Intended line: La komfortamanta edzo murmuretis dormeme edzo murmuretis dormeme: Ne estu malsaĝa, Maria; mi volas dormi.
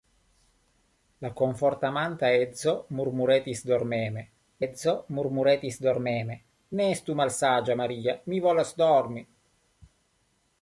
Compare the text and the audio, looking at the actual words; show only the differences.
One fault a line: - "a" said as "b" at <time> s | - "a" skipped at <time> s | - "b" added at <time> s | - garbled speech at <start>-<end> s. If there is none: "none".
none